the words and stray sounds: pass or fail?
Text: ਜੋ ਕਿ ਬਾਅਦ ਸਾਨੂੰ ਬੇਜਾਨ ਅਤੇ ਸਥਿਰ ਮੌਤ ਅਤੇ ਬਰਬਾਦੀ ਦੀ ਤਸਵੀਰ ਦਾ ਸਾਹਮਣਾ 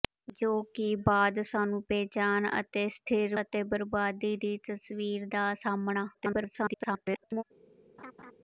fail